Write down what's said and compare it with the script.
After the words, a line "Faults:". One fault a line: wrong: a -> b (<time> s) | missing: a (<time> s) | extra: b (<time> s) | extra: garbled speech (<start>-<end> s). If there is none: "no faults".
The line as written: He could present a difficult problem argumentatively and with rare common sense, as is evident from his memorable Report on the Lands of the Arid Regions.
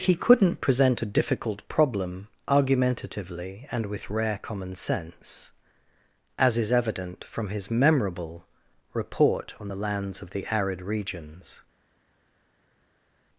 He couldn't present a difficult problem argumentatively and with rare common sense, as is evident from his memorable Report on the Lands of the Arid Regions.
Faults:
wrong: could -> couldn't (0.1 s)